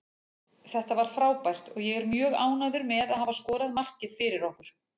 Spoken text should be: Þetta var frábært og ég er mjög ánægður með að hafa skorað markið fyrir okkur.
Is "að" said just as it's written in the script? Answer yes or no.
yes